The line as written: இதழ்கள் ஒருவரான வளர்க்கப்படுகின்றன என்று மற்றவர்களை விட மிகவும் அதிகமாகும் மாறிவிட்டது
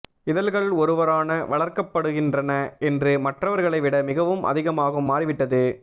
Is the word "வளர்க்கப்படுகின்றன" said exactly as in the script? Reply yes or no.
yes